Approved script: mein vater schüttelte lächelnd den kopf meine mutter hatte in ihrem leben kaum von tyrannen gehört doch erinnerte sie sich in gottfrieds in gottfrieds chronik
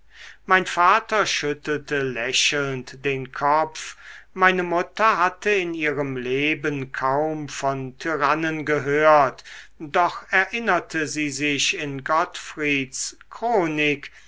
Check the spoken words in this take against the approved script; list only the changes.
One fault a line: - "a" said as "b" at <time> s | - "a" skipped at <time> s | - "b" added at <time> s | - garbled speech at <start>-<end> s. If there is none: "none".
- "in gottfrieds" skipped at 13.2 s